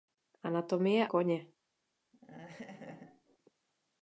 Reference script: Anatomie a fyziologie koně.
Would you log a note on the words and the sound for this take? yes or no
yes